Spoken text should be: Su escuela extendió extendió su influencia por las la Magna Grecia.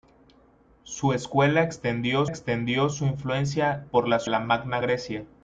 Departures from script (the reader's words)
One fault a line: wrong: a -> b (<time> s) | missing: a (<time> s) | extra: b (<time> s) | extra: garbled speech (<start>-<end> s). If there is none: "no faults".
no faults